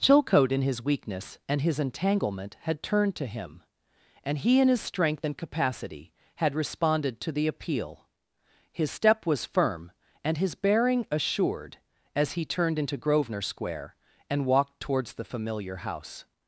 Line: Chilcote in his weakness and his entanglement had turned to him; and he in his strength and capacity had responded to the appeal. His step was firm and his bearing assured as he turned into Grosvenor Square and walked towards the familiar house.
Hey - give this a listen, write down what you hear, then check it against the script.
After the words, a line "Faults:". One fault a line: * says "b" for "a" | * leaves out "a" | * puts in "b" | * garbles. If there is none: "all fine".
Chilcote in his weakness and his entanglement had turned to him; and he in his strength and capacity had responded to the appeal. His step was firm and his bearing assured as he turned into Grosvenor Square and walked towards the familiar house.
Faults:
all fine